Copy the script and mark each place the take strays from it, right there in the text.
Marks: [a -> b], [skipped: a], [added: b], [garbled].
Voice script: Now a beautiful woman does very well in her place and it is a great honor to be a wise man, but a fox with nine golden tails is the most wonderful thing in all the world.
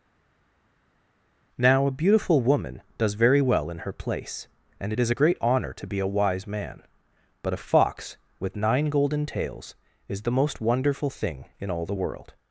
Now a beautiful woman does very well in her place and it is a great honor to be a wise man, but a fox with nine golden tails is the most wonderful thing in all the world.